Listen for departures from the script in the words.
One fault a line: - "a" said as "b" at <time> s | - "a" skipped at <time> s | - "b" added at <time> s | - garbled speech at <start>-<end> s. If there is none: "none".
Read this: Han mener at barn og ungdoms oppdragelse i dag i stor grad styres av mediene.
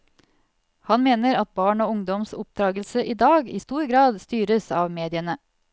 none